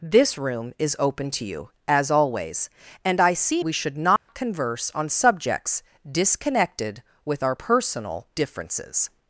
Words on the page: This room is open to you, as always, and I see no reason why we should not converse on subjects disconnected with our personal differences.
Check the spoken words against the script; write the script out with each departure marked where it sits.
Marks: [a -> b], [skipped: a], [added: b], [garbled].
This room is open to you, as always, and I see [skipped: no reason why] we should not converse on subjects disconnected with our personal differences.